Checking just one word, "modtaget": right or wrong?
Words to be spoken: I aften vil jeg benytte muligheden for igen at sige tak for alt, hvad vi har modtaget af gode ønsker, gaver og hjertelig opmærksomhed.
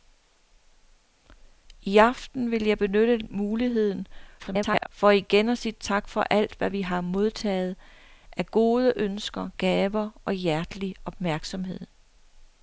right